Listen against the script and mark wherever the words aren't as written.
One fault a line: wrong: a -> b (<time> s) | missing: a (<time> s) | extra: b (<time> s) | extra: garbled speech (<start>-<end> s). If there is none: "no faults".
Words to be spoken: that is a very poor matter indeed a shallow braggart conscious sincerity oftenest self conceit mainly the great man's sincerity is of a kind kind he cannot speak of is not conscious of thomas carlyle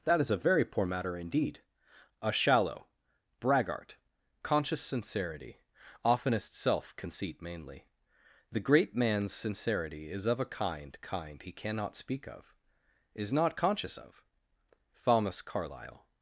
no faults